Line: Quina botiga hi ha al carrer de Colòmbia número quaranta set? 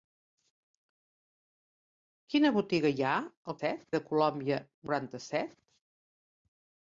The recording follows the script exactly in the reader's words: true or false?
false